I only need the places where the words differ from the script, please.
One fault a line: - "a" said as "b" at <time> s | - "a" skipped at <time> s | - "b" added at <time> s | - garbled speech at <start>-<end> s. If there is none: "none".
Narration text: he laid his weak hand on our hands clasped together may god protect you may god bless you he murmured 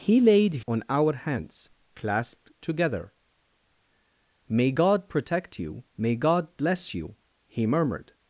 - "his weak hand" skipped at 0.7 s